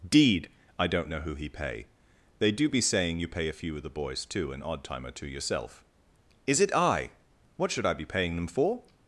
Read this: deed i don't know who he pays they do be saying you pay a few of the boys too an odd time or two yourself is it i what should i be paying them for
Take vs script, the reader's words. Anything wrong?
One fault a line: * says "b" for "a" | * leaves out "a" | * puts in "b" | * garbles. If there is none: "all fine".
* says "pay" for "pays"